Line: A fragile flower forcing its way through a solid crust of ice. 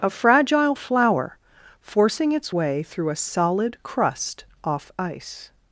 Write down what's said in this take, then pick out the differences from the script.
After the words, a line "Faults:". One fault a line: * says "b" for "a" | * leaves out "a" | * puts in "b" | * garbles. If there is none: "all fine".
A fragile flower forcing its way through a solid crust off ice.
Faults:
* says "off" for "of"